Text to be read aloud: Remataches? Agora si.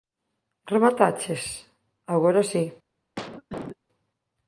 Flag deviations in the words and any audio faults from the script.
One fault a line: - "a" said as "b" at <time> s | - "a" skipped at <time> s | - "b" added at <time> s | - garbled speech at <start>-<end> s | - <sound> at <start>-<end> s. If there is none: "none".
- cough at 3.2-3.8 s